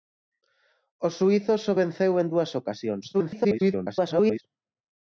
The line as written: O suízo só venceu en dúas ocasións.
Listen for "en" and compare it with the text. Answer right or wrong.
right